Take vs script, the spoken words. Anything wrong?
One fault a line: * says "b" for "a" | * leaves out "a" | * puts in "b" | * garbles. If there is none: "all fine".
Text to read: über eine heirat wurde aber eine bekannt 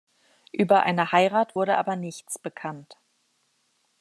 * says "nichts" for "eine"